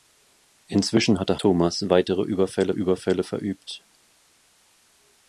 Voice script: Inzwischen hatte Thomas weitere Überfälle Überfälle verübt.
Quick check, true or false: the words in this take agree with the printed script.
true